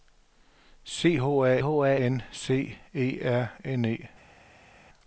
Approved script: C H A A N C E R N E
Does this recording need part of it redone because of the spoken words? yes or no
no